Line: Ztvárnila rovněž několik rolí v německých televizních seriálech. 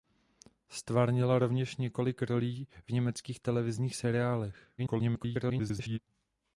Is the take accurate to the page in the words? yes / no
no